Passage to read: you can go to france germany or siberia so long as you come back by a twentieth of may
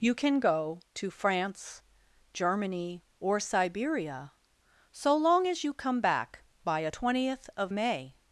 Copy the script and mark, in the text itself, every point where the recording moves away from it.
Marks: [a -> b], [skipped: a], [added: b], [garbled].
you can go to france germany or siberia so long as you come back by a twentieth of may